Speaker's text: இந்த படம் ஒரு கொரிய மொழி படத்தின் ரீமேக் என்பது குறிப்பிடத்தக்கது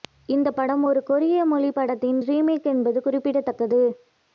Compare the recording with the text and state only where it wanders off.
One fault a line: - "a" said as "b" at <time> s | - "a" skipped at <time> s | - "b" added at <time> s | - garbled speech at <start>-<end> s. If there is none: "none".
none